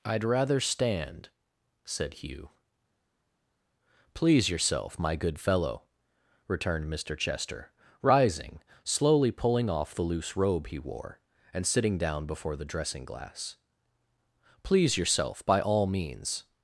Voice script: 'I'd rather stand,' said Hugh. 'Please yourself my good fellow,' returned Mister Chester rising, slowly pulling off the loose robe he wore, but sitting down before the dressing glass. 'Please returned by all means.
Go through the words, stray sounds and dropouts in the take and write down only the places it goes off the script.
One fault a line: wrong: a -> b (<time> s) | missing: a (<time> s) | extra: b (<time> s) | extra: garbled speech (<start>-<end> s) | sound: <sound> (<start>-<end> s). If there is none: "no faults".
wrong: but -> and (11.5 s)
wrong: returned -> yourself (15.0 s)